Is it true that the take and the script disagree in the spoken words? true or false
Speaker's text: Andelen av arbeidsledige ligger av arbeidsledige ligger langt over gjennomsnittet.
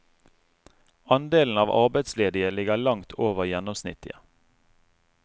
true